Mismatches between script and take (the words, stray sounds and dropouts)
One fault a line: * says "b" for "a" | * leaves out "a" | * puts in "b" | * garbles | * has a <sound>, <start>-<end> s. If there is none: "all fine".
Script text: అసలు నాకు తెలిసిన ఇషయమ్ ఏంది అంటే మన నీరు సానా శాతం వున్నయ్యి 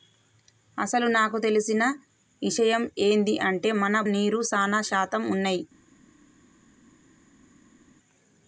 all fine